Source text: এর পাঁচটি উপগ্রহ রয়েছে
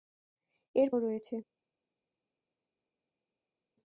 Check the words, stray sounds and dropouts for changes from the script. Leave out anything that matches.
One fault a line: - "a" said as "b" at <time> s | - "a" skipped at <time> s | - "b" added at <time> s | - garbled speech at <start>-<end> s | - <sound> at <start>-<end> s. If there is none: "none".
- "পাঁচটি উপগ্রহ" skipped at 0.9 s